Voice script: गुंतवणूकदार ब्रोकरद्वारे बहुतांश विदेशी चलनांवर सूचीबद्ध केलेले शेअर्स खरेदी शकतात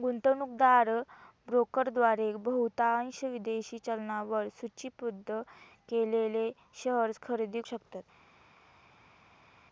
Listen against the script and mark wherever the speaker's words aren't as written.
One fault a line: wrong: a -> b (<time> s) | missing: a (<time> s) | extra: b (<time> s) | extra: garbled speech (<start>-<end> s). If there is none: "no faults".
no faults